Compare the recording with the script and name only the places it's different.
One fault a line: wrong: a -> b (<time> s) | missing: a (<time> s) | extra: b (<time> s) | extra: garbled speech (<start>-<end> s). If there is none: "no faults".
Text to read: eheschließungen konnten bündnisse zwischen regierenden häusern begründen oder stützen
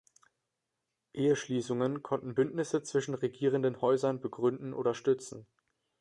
no faults